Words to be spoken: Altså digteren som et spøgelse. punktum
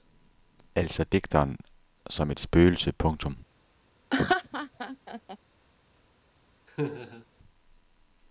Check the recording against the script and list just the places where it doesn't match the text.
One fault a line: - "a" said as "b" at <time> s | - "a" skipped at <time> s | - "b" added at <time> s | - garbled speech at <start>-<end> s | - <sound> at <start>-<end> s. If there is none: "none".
- laugh at 4.1-5.4 s
- laugh at 6.7-7.3 s